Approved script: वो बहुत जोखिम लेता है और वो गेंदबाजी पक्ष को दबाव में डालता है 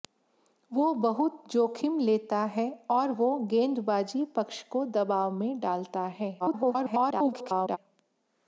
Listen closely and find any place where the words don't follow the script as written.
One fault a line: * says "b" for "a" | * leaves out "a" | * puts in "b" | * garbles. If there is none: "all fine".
* garbles